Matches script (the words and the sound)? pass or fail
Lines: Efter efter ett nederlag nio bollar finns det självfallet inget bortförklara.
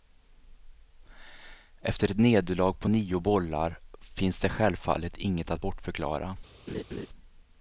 fail